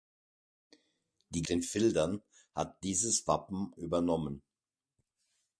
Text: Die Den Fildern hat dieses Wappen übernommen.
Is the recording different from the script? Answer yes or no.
no